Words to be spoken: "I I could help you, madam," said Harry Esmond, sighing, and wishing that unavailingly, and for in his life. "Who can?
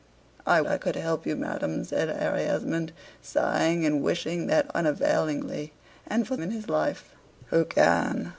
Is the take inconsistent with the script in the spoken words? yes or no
no